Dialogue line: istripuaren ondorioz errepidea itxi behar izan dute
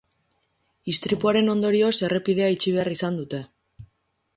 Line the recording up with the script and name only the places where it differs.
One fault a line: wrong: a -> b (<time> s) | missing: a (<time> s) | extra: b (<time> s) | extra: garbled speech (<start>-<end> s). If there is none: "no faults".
no faults